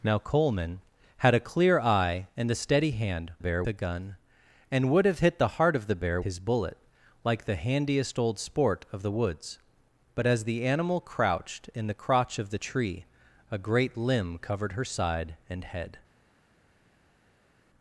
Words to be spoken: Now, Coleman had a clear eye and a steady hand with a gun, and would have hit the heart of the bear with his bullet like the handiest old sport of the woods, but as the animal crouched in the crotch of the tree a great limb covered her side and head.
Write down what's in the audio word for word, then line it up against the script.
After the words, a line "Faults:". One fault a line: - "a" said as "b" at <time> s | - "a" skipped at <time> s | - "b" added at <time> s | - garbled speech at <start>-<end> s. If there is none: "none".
Now, Coleman had a clear eye and a steady hand bear a gun, and would have hit the heart of the bear his bullet like the handiest old sport of the woods, but as the animal crouched in the crotch of the tree a great limb covered her side and head.
Faults:
- "with" said as "bear" at 3.4 s
- "with" skipped at 6.2 s